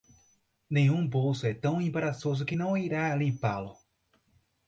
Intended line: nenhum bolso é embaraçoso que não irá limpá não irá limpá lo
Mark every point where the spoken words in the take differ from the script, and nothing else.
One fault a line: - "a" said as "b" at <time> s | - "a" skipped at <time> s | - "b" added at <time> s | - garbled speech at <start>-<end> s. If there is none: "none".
- "tão" added at 1.5 s
- "não irá limpá" skipped at 3.6 s